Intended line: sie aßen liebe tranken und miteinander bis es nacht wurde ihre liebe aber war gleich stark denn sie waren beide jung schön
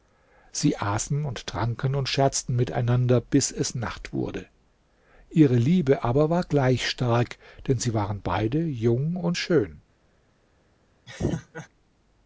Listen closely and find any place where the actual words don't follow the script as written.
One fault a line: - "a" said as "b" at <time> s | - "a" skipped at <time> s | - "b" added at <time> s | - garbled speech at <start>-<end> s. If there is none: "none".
- "liebe" said as "und" at 1.2 s
- "scherzten" added at 2.1 s
- "und" added at 9.2 s